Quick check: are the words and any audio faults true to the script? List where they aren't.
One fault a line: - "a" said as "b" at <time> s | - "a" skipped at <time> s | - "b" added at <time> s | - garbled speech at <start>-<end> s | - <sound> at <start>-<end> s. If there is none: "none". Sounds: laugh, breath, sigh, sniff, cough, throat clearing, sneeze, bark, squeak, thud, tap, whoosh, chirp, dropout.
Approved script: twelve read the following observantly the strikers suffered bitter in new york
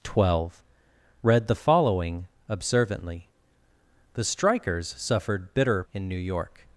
none